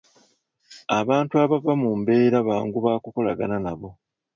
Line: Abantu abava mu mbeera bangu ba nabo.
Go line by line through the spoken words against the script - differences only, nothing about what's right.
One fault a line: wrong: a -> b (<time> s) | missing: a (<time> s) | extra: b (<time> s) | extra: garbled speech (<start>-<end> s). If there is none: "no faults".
extra: kukolagana (3.0 s)